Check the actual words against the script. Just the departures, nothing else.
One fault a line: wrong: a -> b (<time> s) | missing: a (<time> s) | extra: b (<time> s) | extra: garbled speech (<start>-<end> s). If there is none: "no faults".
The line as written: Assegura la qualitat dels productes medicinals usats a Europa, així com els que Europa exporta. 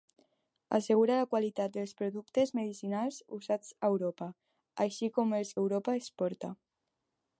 missing: que (5.6 s)